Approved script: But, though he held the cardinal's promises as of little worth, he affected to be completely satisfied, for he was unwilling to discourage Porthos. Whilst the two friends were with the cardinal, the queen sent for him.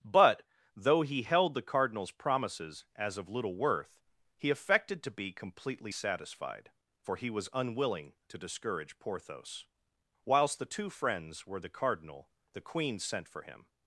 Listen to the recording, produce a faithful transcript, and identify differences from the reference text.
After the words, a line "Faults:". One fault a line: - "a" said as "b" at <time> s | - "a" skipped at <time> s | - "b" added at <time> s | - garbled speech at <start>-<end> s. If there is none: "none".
But, though he held the cardinal's promises as of little worth, he affected to be completely satisfied, for he was unwilling to discourage Porthos. Whilst the two friends were the cardinal, the queen sent for him.
Faults:
- "with" skipped at 11.6 s